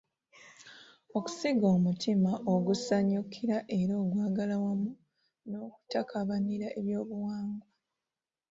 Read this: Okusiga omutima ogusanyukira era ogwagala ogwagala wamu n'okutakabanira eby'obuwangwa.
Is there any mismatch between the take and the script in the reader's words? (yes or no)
yes